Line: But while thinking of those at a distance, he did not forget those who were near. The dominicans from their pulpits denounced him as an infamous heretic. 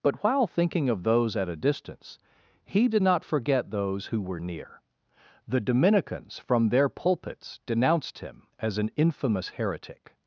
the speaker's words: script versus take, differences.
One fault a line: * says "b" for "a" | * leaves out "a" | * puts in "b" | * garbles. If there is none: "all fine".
all fine